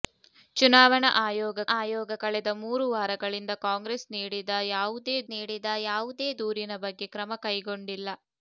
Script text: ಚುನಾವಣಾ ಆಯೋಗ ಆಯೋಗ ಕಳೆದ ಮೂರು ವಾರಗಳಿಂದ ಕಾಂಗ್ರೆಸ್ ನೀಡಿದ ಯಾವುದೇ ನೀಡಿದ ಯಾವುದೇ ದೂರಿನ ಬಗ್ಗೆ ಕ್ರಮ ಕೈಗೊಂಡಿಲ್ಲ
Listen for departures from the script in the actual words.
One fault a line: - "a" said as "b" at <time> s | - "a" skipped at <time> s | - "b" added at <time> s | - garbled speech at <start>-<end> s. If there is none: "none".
none